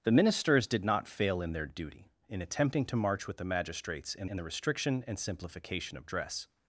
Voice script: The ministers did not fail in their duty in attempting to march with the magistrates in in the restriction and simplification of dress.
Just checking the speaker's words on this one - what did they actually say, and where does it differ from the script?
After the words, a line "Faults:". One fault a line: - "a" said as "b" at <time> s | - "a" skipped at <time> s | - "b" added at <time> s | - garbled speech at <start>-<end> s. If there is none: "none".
The ministers did not fail in their duty in attempting to march with the magistrates in in the restriction and simplification of dress.
Faults:
none